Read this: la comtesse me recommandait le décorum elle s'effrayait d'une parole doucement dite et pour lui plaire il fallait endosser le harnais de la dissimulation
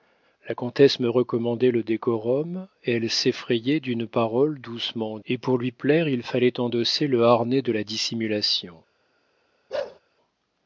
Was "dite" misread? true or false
true